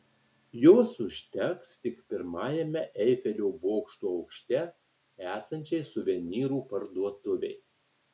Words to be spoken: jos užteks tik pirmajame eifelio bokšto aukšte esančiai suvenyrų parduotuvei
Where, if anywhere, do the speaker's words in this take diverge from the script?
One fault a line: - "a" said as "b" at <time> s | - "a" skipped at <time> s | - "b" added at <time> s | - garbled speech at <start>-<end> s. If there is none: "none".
none